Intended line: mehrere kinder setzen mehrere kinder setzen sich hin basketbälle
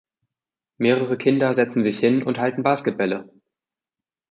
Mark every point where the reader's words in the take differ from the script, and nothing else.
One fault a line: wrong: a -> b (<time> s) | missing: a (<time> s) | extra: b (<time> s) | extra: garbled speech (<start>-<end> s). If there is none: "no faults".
wrong: mehrere kinder setzen sich hin -> sich hin und halten (1.8 s)